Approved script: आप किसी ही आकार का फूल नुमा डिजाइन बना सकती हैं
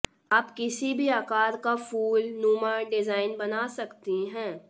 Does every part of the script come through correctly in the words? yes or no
no